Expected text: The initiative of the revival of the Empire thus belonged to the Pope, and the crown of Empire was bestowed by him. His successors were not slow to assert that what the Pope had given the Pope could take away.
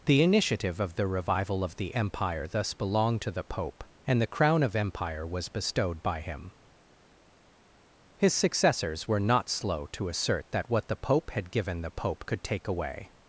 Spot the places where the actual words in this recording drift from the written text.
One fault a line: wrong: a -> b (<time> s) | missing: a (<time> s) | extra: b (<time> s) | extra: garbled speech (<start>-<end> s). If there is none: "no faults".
no faults